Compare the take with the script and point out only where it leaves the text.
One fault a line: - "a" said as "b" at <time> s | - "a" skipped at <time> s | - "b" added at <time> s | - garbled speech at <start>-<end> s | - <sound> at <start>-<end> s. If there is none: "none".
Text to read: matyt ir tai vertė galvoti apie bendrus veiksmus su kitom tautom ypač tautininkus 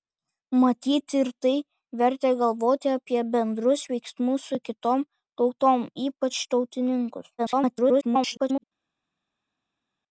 - garbled speech at 7.4-8.6 s